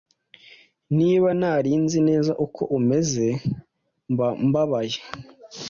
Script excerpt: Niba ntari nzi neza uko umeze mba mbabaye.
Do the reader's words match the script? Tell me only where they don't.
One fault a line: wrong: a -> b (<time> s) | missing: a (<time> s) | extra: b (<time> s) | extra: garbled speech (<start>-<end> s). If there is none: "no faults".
no faults